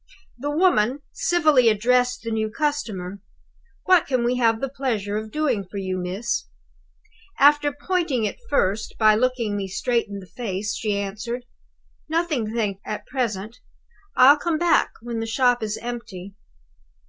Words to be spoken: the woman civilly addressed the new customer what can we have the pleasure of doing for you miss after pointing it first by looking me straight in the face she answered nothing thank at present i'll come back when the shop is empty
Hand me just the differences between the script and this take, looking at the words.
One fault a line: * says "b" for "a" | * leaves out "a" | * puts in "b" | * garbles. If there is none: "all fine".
all fine